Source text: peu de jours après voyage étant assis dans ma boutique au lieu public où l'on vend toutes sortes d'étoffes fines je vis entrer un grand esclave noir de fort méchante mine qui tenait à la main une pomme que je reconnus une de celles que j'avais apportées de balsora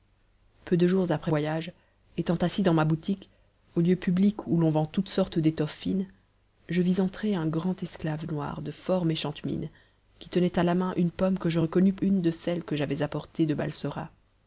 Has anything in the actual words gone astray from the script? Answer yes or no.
no